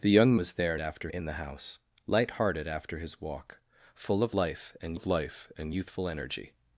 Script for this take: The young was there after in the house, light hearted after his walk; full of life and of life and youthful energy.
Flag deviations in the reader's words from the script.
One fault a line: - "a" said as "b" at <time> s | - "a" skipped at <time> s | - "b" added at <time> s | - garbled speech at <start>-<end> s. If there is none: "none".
none